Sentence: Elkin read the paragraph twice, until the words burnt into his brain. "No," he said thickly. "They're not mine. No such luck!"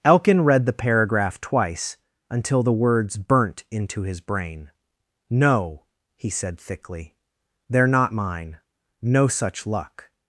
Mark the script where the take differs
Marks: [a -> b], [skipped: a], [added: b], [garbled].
Elkin read the paragraph twice, until the words burnt into his brain. "No," he said thickly. "They're not mine. No such luck!"